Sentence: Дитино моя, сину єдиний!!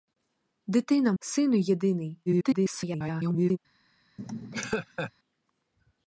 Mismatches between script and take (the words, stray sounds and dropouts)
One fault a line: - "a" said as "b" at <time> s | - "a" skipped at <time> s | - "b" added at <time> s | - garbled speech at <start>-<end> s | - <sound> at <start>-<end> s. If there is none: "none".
- "моя" skipped at 1.1 s
- garbled speech at 2.3-3.6 s
- laugh at 4.2-5.1 s